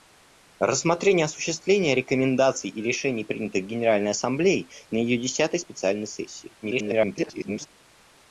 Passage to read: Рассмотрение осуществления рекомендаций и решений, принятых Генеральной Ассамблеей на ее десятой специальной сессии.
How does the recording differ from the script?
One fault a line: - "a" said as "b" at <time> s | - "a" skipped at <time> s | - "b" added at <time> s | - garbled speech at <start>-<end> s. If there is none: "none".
- garbled speech at 6.6-7.7 s